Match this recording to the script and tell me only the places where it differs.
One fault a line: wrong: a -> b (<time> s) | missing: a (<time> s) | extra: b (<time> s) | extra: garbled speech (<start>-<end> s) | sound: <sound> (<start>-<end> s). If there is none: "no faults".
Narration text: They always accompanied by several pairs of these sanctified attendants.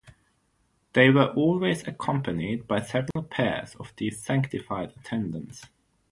extra: were (1.1 s)
sound: dropout (3.1-3.2 s)